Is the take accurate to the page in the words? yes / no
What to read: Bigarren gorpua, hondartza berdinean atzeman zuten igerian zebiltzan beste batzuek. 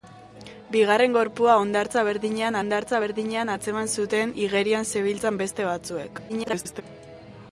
no